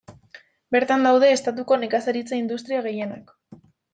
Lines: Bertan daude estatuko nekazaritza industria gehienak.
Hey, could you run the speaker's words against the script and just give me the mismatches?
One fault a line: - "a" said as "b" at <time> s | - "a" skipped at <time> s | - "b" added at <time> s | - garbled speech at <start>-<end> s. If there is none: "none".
none